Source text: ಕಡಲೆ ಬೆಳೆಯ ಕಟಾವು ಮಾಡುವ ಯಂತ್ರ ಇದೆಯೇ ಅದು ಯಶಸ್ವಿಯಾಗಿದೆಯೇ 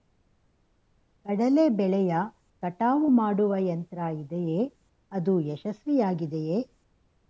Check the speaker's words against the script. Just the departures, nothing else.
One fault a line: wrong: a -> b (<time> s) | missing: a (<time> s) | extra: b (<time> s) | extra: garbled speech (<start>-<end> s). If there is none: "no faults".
no faults